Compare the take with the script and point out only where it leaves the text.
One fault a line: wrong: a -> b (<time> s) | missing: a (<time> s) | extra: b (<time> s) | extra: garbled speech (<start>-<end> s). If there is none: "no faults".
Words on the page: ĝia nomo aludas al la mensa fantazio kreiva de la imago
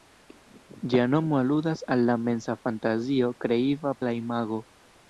no faults